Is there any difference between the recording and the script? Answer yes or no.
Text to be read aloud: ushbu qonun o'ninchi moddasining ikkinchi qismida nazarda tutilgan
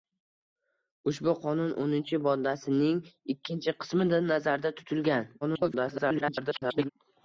yes